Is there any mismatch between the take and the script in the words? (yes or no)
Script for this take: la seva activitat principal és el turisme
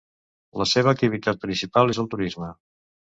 no